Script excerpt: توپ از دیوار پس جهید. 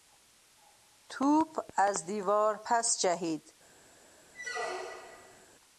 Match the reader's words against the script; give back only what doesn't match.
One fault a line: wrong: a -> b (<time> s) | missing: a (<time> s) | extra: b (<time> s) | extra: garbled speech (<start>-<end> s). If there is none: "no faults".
no faults